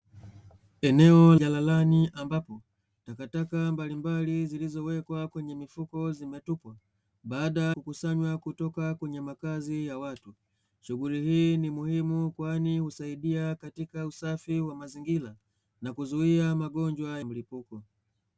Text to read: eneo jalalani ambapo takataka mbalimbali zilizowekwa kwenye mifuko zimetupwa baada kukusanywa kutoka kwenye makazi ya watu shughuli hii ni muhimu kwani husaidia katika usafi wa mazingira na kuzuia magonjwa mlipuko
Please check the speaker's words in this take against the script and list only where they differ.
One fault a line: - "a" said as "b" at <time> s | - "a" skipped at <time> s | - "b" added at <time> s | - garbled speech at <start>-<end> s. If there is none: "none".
none